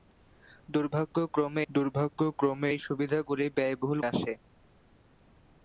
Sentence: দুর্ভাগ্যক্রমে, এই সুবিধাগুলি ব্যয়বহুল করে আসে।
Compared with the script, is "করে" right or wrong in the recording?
wrong